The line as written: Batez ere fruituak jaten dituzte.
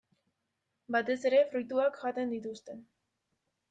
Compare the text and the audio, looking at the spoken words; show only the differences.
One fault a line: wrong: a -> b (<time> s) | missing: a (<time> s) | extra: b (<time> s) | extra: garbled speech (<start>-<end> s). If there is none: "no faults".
no faults